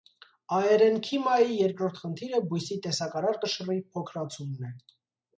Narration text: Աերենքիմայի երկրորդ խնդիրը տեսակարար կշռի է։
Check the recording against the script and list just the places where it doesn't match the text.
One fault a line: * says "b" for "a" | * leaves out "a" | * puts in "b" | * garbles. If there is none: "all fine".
* puts in "բույսի"
* puts in "փոքրացումն"